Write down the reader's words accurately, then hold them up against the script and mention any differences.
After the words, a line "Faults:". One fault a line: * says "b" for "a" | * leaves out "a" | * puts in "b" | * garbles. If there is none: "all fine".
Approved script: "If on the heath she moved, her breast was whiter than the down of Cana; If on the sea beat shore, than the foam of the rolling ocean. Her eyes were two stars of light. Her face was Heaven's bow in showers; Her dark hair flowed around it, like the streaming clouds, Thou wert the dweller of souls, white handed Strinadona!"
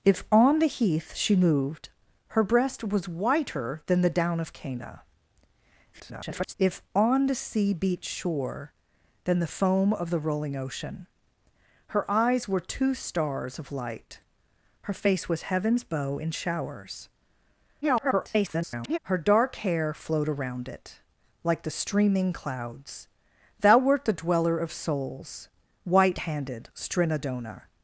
"If on the heath she moved, her breast was whiter than the down of Cana; [garbled] If on the sea beat shore, than the foam of the rolling ocean. Her eyes were two stars of light. Her face was Heaven's bow in showers; [garbled] Her dark hair flowed around it, like the streaming clouds, Thou wert the dweller of souls, white handed Strinadona!"
Faults:
* garbles
* garbles